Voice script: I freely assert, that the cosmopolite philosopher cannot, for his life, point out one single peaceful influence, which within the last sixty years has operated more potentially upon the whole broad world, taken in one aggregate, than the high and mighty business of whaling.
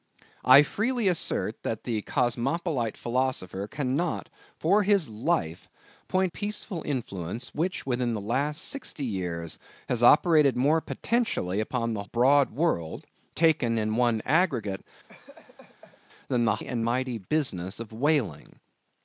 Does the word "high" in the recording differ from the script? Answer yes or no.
yes